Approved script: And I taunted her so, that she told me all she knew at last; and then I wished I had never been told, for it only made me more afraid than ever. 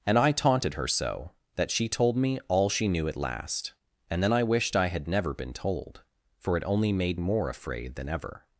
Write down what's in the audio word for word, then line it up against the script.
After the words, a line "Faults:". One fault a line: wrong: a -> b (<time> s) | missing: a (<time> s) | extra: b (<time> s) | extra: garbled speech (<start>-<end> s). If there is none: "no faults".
And I taunted her so, that she told me all she knew at last; and then I wished I had never been told, for it only made more afraid than ever.
Faults:
missing: me (7.2 s)